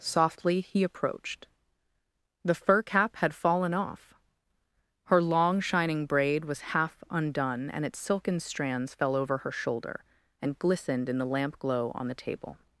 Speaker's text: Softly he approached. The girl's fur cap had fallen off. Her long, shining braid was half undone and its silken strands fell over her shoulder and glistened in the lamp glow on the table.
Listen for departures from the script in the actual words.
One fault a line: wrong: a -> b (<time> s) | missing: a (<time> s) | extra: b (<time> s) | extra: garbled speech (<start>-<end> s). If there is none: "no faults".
missing: girl's (2.5 s)